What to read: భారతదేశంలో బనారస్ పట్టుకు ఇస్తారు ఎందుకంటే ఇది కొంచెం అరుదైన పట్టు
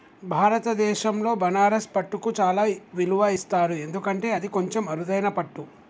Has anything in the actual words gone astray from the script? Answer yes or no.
yes